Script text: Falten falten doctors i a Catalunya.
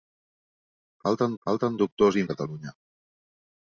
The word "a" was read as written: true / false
true